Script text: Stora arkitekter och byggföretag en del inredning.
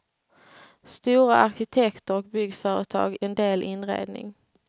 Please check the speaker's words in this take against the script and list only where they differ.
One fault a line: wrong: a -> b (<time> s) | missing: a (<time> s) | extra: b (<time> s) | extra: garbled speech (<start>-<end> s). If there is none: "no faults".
no faults